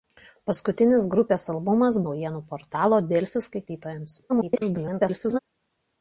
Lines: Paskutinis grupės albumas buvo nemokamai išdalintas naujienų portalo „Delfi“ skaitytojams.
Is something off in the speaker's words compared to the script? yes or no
yes